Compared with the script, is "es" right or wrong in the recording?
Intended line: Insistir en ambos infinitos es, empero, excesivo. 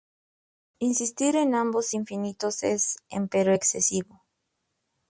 right